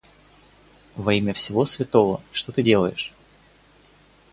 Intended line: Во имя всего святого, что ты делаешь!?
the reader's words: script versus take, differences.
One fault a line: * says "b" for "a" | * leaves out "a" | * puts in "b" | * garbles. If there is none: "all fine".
all fine